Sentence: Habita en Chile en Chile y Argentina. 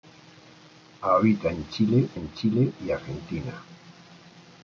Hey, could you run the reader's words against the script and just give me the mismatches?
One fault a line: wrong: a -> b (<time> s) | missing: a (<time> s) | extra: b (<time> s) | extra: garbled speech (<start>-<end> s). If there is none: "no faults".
no faults